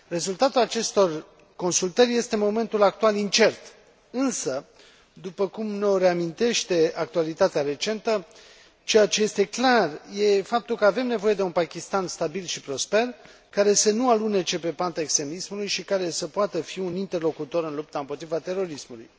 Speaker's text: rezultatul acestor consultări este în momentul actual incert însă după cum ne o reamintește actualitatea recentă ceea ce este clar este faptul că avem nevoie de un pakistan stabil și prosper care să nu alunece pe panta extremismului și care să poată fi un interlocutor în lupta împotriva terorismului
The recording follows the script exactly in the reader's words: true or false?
true